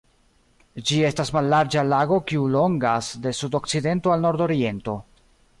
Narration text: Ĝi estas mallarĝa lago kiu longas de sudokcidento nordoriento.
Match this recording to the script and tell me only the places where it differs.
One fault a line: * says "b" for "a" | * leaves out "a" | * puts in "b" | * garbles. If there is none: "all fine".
* puts in "al"